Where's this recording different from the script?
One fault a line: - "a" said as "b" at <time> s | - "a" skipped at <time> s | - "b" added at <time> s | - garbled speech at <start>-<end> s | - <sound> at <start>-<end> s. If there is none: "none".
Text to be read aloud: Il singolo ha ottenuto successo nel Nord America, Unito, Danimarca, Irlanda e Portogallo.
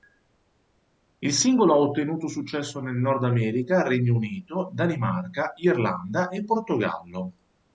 - "Regno" added at 3.9 s